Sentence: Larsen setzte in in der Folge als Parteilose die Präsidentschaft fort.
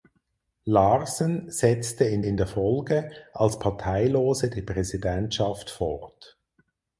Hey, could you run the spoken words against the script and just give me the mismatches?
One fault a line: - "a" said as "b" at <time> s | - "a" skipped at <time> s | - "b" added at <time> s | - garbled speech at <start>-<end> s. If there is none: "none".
none